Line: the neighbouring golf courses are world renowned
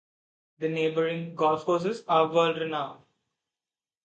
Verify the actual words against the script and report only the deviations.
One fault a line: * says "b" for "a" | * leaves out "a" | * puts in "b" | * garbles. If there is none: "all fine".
all fine